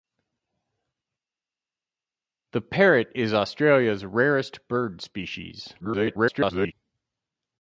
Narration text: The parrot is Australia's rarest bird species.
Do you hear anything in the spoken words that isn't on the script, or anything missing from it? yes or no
yes